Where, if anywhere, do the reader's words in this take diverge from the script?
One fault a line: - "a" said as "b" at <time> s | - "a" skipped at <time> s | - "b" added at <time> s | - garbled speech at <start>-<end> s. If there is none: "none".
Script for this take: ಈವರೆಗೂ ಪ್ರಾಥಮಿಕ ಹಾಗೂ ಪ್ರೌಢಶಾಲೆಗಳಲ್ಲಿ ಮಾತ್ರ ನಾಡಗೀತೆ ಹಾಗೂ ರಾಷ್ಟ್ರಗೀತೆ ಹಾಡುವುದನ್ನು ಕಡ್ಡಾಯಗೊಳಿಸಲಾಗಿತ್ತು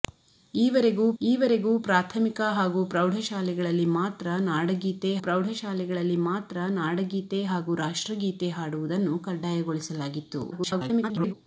- "ಈವರೆಗೂ" added at 1.2 s
- "ಪ್ರೌಢಶಾಲೆಗಳಲ್ಲಿ ಮಾತ್ರ ನಾಡಗೀತೆ" added at 5.2 s
- garbled speech at 10.5-11.3 s